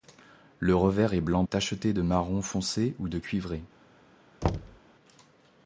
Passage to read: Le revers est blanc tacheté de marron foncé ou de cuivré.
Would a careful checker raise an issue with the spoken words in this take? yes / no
no